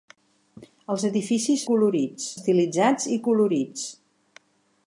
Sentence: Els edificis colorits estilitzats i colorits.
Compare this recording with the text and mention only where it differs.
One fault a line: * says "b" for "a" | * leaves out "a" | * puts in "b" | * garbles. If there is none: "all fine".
all fine